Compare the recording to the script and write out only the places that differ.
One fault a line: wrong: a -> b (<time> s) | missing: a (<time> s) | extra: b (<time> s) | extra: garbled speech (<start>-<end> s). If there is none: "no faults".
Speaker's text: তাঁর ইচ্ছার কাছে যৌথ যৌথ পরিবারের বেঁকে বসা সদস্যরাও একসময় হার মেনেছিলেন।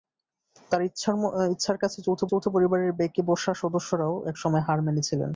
no faults